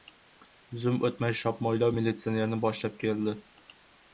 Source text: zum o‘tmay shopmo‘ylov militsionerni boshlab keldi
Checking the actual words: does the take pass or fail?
pass